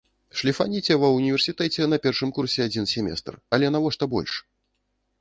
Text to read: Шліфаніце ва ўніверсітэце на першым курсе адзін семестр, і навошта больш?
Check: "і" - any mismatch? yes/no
yes